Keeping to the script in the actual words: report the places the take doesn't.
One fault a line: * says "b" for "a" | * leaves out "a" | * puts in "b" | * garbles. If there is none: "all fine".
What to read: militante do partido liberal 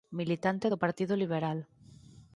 all fine